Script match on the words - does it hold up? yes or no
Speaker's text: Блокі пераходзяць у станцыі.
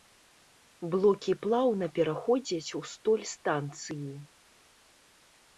no